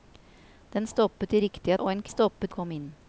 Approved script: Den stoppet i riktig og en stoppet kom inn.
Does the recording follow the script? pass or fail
pass